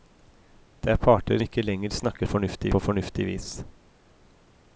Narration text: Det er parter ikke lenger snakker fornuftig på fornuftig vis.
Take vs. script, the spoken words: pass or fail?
pass